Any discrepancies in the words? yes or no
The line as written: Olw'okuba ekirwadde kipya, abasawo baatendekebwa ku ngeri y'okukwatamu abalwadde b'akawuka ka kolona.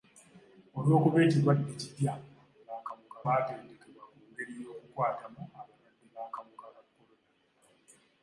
yes